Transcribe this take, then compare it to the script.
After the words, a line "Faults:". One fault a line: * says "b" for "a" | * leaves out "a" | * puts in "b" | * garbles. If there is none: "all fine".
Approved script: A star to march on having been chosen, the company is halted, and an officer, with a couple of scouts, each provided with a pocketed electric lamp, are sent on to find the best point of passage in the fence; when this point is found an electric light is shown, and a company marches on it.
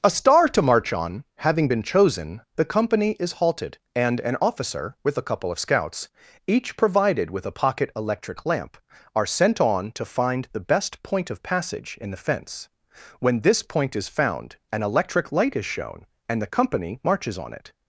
A star to march on having been chosen, the company is halted, and an officer, with a couple of scouts, each provided with a pocket electric lamp, are sent on to find the best point of passage in the fence; when this point is found an electric light is shown, and the company marches on it.
Faults:
* says "pocket" for "pocketed"
* says "the" for "a"